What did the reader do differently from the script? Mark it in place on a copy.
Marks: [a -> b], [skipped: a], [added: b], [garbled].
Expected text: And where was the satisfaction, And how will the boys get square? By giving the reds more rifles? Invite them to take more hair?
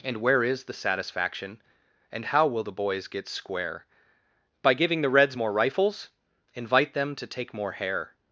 And where [was -> is] the satisfaction, And how will the boys get square? By giving the reds more rifles? Invite them to take more hair?